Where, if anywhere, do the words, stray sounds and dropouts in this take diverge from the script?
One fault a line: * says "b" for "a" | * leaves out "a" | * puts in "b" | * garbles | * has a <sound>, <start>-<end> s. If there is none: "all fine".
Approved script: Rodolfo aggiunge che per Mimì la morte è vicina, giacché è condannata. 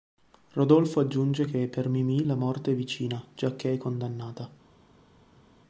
all fine